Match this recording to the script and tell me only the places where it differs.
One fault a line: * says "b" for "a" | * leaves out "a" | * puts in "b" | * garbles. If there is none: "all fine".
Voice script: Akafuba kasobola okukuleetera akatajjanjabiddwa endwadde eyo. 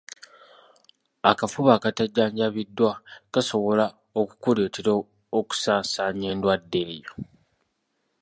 * puts in "akatajjanjabiddwa"
* says "okusaasaanya" for "akatajjanjabiddwa"